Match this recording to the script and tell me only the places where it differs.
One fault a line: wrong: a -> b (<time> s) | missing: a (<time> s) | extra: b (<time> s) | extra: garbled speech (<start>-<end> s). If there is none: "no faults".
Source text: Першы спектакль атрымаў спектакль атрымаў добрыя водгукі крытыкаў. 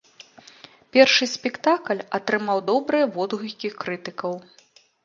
missing: спектакль атрымаў (2.6 s)